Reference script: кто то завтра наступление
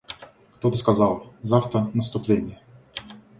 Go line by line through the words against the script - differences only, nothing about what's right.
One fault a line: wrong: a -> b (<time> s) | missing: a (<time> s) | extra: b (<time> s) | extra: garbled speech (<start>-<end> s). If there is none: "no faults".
extra: сказал (0.7 s)